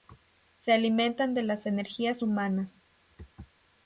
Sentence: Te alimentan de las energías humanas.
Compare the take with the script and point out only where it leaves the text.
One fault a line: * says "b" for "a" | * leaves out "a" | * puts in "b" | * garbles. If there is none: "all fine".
* says "Se" for "Te"